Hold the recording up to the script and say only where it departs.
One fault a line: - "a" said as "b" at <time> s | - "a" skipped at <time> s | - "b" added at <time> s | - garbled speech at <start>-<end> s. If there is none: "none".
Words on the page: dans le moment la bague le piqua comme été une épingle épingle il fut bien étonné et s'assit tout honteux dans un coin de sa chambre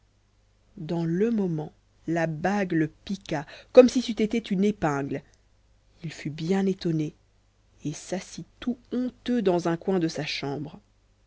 - "si c'eût" added at 3.9 s
- "épingle" skipped at 5.2 s